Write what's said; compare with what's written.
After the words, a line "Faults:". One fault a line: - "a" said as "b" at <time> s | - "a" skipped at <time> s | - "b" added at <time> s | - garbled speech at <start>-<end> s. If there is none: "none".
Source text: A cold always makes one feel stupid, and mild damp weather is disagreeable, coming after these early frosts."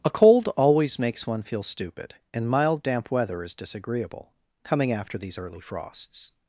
A cold always makes one feel stupid, and mild damp weather is disagreeable, coming after these early frosts."
Faults:
none